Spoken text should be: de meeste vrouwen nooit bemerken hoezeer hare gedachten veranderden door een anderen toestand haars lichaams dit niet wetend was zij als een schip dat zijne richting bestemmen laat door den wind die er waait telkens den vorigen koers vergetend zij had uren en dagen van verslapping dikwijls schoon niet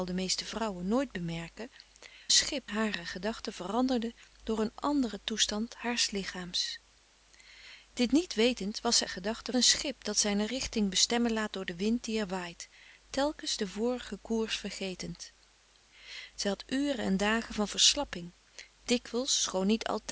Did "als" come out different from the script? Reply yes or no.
yes